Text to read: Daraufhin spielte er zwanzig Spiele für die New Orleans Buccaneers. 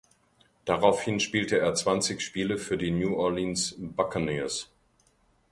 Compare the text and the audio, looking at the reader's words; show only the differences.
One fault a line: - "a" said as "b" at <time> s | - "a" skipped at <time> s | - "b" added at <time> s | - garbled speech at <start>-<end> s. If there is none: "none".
none